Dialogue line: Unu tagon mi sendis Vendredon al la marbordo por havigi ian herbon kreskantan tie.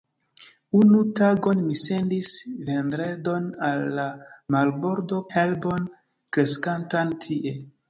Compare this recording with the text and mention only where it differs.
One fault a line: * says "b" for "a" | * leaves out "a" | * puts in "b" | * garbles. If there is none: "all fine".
* leaves out "por havigi ian"